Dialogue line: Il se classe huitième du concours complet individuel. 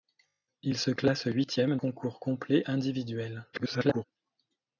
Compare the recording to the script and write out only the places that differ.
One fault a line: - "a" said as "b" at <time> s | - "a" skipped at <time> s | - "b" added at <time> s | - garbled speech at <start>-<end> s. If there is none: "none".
- "du" skipped at 1.8 s
- garbled speech at 3.5-4.0 s